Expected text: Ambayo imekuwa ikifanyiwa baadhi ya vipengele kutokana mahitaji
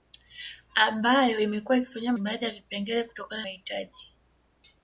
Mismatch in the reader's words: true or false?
false